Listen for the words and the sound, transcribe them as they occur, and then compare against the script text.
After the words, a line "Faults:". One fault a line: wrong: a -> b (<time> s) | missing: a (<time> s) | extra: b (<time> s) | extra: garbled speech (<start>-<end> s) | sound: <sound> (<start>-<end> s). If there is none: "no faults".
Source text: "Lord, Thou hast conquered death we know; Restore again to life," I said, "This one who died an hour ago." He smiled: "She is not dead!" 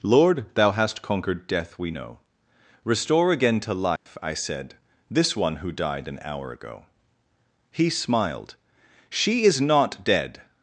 "Lord, Thou hast conquered death we know; Restore again to life," I said, "This one who died an hour ago." He smiled: "She is not dead!"
Faults:
sound: dropout (4.0-4.1 s)